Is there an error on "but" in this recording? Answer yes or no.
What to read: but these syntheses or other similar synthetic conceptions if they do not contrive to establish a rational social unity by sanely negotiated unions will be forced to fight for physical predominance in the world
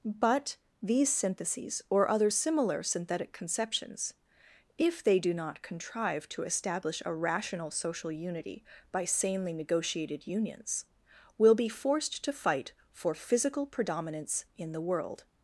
no